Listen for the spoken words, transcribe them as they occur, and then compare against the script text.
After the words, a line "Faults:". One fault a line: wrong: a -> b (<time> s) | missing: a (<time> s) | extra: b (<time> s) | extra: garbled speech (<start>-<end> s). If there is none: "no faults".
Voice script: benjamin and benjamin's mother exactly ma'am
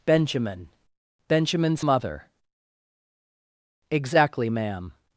benjamin benjamin's mother exactly ma'am
Faults:
missing: and (0.7 s)